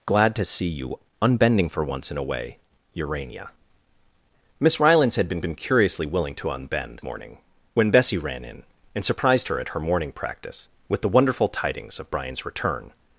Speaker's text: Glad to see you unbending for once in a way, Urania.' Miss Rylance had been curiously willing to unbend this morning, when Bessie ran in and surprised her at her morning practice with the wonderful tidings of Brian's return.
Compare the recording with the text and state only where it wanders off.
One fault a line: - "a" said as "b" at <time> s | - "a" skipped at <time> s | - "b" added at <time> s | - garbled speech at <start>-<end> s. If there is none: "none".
- "been" added at 5.4 s
- "this" skipped at 7.0 s